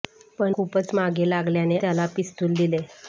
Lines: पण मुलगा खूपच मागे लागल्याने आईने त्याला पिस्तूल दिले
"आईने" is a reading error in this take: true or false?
true